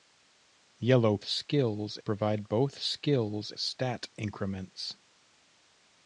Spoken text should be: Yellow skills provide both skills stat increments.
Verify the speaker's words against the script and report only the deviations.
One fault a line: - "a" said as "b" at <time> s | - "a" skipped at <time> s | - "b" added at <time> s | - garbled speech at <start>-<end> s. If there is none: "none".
none